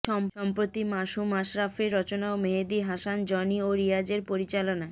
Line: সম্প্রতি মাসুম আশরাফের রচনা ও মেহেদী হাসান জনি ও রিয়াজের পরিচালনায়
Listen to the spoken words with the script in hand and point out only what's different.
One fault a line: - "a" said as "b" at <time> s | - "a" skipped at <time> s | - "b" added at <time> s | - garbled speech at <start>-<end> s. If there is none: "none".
none